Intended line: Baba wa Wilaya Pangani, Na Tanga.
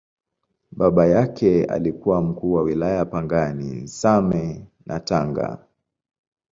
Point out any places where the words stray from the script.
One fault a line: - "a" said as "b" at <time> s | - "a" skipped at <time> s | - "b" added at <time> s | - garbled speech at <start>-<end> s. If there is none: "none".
- "yake alikuwa Mkuu" added at 1.1 s
- "Same" added at 3.9 s